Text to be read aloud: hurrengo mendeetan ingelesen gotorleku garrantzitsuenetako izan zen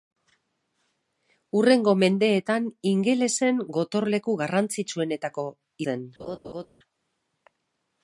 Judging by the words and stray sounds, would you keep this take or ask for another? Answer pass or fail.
fail